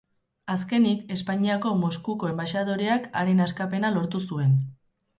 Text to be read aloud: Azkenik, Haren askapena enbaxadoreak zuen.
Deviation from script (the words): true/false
true